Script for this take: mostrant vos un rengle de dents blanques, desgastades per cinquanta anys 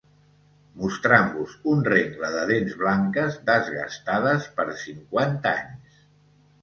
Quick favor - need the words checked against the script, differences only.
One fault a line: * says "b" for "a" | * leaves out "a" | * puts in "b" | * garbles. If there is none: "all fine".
all fine